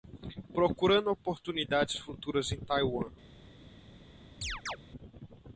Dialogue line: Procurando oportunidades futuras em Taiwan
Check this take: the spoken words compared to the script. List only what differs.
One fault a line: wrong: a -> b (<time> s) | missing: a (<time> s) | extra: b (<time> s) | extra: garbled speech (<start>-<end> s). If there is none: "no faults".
no faults